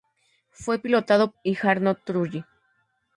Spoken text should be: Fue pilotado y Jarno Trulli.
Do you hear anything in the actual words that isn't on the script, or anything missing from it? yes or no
no